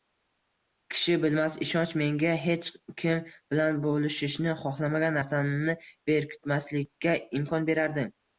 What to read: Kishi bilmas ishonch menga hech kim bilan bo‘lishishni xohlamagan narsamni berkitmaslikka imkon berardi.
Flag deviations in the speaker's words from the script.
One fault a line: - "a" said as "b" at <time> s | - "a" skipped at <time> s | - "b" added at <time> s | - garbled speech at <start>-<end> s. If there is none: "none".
none